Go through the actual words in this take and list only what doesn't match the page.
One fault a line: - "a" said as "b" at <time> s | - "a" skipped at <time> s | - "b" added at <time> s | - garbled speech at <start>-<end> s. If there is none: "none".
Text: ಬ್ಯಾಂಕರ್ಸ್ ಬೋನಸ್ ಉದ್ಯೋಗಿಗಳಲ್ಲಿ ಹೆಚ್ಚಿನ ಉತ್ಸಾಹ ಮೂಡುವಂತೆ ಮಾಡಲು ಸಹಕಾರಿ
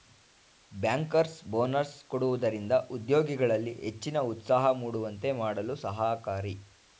- "ಕೊಡುವುದರಿಂದ" added at 2.0 s